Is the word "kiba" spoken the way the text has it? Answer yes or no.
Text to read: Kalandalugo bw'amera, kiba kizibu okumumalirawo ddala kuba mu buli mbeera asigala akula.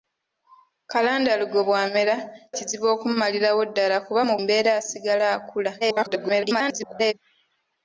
no